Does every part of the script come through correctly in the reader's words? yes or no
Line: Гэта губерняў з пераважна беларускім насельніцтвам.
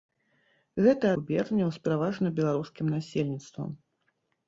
yes